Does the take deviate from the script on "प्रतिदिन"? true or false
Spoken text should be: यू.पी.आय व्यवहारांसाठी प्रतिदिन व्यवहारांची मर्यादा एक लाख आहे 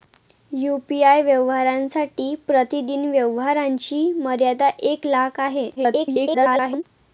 false